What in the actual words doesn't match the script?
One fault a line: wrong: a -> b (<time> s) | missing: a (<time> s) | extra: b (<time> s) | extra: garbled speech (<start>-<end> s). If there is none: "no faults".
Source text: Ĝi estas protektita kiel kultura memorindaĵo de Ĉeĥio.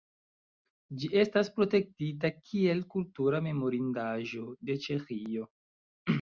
no faults